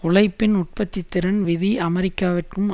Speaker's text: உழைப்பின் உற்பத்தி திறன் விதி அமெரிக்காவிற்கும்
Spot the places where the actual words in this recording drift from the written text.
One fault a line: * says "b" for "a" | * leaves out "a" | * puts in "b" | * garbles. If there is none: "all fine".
all fine